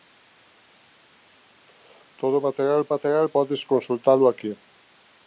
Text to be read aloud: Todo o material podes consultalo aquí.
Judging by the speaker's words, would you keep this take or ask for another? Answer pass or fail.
fail